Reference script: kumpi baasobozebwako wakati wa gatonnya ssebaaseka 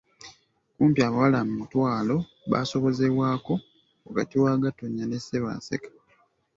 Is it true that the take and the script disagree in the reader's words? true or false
true